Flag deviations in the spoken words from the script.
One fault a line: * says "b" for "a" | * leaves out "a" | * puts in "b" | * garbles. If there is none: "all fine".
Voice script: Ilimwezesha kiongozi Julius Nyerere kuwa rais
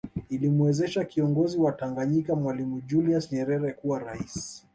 * puts in "wa Tanganyika Mwalimu"